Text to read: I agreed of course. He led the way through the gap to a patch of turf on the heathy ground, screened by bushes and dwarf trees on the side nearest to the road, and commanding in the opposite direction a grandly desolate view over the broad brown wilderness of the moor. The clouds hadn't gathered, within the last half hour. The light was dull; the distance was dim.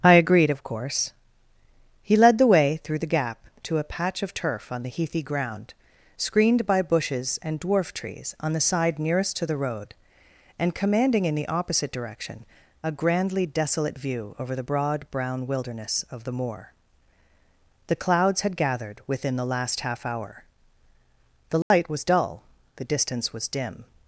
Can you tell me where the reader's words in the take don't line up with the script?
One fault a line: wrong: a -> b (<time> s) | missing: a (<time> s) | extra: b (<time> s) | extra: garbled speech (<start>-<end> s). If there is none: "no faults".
wrong: hadn't -> had (18.4 s)